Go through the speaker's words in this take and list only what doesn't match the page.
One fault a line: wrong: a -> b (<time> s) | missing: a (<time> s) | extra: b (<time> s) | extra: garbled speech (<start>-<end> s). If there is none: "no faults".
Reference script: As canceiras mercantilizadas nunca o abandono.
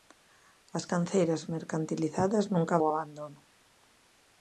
no faults